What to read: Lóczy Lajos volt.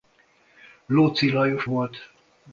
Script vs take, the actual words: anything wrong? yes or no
no